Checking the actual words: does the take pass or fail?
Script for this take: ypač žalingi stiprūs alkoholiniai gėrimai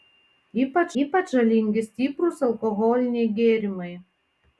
fail